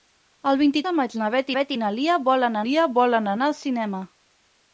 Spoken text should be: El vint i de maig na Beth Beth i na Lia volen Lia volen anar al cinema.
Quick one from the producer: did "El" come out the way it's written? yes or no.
yes